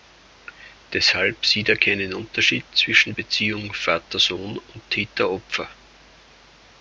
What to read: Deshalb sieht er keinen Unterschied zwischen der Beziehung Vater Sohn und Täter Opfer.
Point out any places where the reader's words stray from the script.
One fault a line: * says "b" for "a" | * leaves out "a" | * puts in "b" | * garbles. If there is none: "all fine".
* leaves out "der"